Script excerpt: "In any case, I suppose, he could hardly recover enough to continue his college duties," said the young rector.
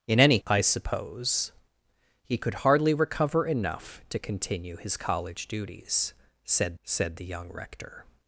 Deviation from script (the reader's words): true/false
true